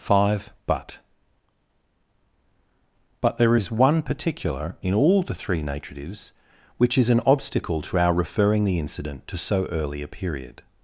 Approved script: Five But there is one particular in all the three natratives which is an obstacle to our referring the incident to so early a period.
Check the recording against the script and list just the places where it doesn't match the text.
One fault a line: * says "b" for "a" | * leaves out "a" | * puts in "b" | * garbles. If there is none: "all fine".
* puts in "But"